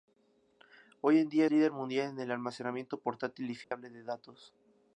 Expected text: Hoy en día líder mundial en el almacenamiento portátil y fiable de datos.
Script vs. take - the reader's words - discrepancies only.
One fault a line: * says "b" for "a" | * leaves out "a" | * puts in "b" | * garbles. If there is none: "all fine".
all fine